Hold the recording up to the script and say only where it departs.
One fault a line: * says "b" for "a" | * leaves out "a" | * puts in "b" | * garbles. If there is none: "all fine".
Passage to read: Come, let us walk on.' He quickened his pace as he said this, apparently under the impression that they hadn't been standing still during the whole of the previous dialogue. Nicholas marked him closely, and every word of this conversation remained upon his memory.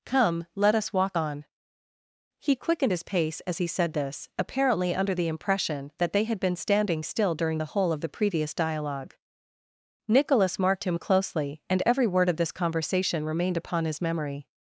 * says "had" for "hadn't"